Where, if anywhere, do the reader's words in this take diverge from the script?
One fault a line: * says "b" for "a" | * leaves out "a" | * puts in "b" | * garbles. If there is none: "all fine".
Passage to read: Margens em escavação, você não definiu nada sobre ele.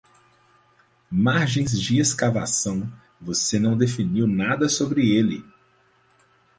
* says "de" for "em"